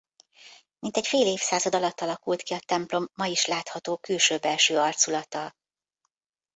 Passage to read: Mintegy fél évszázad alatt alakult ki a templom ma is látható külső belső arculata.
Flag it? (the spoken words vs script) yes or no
no